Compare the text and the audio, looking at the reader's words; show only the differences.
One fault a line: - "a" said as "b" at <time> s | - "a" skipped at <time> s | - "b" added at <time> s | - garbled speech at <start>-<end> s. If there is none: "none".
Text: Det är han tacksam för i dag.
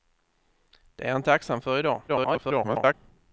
- garbled speech at 2.1-2.9 s